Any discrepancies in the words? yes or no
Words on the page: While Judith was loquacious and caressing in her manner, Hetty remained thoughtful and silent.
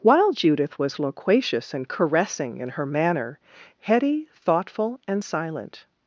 yes